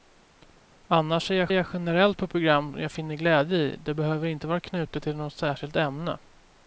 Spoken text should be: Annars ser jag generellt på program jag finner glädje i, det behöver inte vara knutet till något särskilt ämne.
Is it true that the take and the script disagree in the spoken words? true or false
true